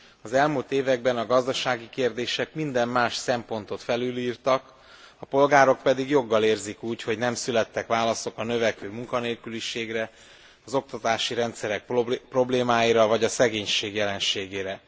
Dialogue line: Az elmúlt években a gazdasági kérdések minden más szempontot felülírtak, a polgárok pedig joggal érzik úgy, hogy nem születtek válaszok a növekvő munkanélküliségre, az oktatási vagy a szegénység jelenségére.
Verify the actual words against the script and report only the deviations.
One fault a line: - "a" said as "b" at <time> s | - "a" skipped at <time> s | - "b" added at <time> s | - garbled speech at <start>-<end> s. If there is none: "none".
- "rendszerek problémáira" added at 11.3 s